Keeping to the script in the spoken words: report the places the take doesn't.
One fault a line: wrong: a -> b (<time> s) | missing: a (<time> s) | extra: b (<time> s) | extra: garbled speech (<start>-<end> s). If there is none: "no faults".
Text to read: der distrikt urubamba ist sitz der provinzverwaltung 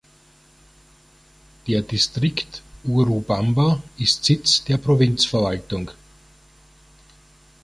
no faults